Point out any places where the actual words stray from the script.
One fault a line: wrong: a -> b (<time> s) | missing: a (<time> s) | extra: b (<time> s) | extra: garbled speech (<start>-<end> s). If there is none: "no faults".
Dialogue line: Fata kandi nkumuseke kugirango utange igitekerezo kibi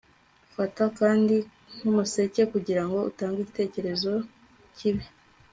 no faults